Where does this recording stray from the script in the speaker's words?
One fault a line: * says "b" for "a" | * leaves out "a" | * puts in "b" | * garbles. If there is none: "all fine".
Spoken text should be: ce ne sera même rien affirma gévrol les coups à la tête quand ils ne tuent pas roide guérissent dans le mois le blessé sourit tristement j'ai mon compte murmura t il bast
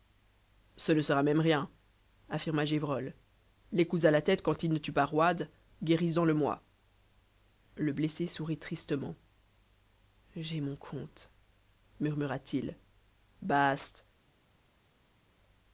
all fine